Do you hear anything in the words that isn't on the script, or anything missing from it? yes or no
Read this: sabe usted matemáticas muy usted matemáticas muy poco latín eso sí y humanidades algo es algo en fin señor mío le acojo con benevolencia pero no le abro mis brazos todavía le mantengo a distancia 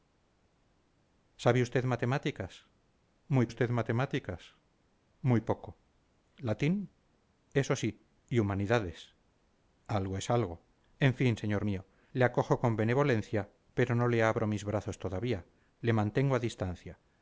no